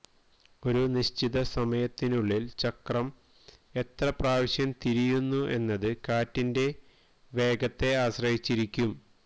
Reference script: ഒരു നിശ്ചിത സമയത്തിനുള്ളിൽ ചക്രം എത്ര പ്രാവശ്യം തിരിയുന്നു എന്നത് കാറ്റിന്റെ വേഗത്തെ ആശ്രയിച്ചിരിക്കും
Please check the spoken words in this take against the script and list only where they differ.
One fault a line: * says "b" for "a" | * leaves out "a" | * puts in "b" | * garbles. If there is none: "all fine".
all fine